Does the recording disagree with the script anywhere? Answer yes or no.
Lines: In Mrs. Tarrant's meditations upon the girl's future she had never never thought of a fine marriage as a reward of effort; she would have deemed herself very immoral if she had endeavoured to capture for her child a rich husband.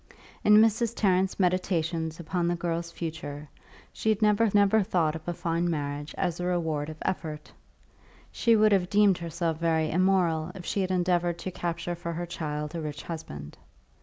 no